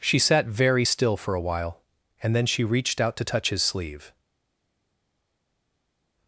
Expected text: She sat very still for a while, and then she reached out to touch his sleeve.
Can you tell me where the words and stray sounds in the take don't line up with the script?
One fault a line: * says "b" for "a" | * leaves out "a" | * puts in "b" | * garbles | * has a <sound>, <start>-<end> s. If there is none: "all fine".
all fine